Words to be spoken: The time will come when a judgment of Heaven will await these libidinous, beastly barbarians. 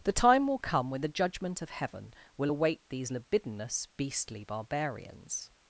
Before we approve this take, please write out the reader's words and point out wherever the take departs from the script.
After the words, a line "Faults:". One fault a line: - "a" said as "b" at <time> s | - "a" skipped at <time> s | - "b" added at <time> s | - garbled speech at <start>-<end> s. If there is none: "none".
The time will come when the judgment of Heaven will await these libidinous, beastly barbarians.
Faults:
- "a" said as "the" at 1.0 s